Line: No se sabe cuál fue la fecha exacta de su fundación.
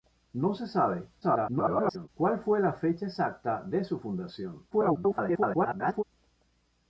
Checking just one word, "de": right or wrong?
right